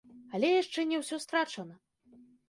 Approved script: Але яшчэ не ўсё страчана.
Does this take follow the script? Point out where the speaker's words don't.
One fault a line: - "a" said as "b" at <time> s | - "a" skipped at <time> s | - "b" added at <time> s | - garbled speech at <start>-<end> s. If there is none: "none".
none